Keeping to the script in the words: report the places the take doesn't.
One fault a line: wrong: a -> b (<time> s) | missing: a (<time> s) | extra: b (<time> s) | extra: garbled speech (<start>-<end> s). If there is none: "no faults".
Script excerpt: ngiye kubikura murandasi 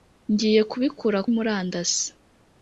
no faults